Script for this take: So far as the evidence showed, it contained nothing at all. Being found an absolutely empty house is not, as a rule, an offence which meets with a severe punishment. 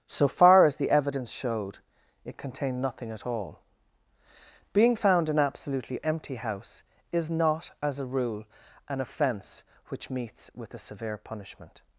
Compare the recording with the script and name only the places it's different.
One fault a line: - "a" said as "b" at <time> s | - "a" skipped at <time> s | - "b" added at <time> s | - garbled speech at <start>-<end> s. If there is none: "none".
none